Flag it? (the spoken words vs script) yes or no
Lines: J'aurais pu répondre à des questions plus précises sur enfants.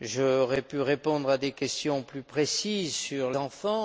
no